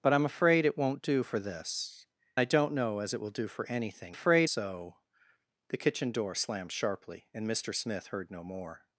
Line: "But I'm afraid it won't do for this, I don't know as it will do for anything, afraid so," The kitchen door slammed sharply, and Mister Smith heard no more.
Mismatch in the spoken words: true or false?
false